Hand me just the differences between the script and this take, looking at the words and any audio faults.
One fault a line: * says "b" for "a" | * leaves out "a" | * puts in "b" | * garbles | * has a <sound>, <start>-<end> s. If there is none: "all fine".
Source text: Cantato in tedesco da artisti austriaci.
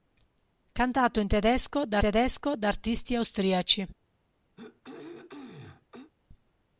* puts in "tedesco da"
* has a throat clearing, 4.6-6.1 s